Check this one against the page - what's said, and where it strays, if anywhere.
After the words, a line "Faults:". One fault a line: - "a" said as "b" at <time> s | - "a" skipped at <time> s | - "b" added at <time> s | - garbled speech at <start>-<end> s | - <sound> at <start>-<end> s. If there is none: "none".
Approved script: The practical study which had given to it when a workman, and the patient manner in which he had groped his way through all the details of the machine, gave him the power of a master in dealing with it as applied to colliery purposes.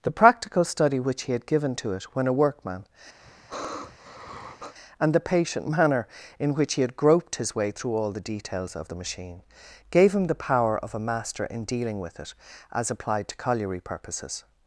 The practical study which he had given to it when a workman, and the patient manner in which he had groped his way through all the details of the machine, gave him the power of a master in dealing with it as applied to colliery purposes.
Faults:
- "he" added at 1.2 s
- sigh at 3.2-4.7 s